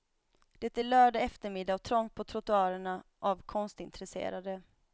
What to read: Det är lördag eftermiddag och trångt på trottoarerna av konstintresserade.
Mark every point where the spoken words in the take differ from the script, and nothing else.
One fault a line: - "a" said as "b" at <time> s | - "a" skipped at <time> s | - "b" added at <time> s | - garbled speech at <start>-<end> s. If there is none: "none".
none